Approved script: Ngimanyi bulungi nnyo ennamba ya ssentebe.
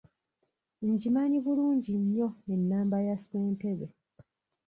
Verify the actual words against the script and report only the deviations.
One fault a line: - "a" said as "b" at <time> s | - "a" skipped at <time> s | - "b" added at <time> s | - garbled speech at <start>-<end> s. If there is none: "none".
none